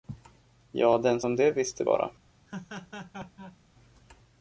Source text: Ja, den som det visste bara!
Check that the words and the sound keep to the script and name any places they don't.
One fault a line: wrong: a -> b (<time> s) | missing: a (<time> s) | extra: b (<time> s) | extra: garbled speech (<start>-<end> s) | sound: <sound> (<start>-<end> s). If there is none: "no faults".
sound: laugh (2.5-3.6 s)